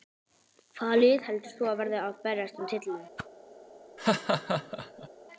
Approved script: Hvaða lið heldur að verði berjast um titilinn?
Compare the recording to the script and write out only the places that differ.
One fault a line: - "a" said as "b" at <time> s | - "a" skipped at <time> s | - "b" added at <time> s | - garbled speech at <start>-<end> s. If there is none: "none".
- "þú" added at 1.6 s
- "að" added at 2.1 s